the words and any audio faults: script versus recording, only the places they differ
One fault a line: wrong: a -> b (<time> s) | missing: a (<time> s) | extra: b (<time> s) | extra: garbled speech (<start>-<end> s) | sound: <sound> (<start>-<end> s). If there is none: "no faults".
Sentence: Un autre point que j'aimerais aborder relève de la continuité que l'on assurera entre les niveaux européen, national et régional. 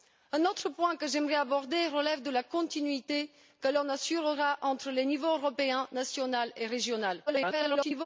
extra: garbled speech (7.3-8.1 s)